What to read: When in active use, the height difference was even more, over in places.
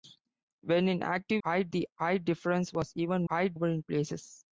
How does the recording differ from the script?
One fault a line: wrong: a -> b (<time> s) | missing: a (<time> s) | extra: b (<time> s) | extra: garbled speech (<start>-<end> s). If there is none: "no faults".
wrong: use -> height (1.4 s)
wrong: more -> height (3.3 s)